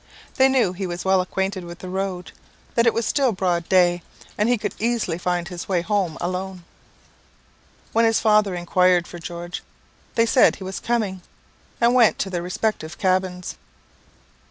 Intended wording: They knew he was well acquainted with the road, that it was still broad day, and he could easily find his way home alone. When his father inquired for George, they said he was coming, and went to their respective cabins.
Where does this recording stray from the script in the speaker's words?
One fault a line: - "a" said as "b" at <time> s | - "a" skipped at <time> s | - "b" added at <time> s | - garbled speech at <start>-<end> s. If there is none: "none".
none